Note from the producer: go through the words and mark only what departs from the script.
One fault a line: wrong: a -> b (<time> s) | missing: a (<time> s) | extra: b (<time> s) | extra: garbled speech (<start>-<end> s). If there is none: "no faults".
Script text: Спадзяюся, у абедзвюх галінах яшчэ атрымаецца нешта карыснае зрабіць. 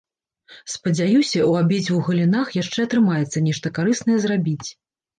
no faults